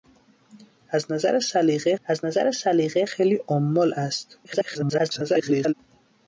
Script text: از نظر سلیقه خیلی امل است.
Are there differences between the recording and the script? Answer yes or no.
yes